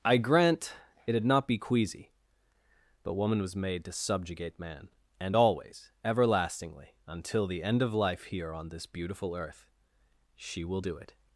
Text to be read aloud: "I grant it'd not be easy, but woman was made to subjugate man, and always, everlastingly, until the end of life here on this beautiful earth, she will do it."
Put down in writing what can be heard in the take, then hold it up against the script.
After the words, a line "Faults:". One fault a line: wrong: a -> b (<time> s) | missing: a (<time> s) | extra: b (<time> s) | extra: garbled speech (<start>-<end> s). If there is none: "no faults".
"I grant it'd not be queasy, but woman was made to subjugate man, and always, everlastingly, until the end of life here on this beautiful earth, she will do it."
Faults:
wrong: easy -> queasy (1.6 s)